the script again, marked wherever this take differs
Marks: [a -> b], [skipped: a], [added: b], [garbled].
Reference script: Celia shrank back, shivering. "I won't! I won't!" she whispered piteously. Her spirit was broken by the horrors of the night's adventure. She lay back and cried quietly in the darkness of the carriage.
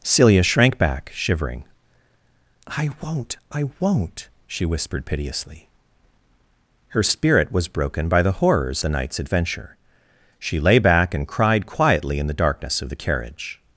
Celia shrank back, shivering. "I won't! I won't!" she whispered piteously. Her spirit was broken by the horrors [skipped: of] the night's adventure. She lay back and cried quietly in the darkness of the carriage.